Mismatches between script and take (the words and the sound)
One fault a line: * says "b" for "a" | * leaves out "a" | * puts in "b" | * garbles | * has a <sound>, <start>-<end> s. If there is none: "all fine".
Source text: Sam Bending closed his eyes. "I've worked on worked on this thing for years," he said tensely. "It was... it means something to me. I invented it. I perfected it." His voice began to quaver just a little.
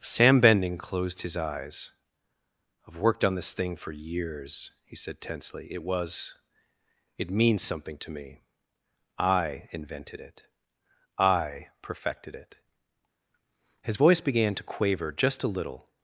* leaves out "worked on"